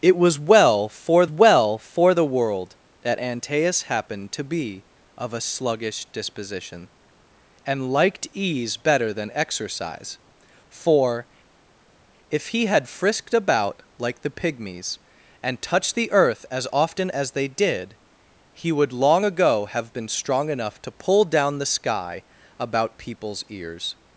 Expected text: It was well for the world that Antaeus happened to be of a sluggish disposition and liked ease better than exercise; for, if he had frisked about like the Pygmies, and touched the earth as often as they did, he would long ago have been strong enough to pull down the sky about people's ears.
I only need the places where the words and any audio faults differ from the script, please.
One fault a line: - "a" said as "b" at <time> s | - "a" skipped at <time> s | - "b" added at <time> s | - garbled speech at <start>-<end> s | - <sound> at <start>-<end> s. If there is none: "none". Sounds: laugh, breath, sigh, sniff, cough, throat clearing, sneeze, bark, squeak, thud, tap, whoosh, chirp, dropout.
- "well for" added at 1.3 s